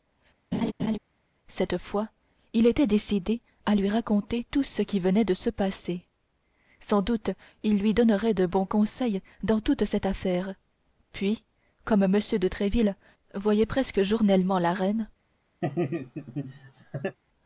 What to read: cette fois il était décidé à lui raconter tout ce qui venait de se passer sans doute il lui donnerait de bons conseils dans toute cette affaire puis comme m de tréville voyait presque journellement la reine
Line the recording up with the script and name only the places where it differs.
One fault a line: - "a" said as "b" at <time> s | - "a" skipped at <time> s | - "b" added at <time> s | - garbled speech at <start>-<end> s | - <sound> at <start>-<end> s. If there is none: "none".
- laugh at 0.5-1.0 s
- laugh at 15.6-17.2 s